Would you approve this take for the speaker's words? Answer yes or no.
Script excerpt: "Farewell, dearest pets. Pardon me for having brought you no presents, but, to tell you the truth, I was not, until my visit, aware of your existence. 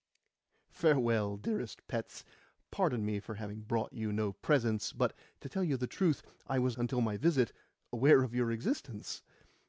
no